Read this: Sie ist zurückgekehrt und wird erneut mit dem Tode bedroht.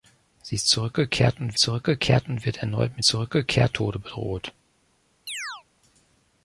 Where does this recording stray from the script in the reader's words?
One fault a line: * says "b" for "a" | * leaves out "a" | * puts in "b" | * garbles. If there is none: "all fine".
* puts in "zurückgekehrt und"
* says "zurückgekehrt" for "dem"